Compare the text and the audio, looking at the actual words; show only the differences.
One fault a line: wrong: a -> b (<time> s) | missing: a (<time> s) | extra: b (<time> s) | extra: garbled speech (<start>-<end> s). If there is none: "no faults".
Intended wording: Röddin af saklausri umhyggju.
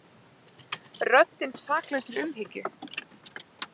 no faults